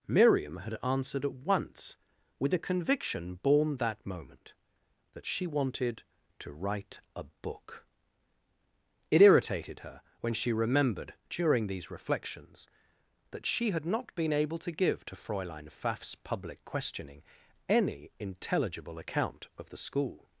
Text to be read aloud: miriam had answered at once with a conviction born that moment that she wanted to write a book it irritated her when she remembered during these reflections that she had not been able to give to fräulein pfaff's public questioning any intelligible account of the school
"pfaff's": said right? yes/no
yes